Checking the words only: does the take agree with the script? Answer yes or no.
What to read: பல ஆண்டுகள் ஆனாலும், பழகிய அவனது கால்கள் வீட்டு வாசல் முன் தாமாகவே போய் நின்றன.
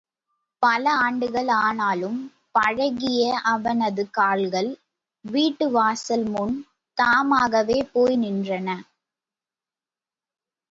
yes